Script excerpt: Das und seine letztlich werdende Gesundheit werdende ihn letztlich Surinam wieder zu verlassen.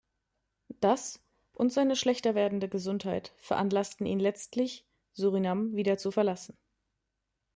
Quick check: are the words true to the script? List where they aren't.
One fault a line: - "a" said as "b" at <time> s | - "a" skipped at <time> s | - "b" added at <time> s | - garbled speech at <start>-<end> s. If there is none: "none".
- "letztlich" said as "schlechter" at 1.9 s
- "werdende" said as "veranlassten" at 3.4 s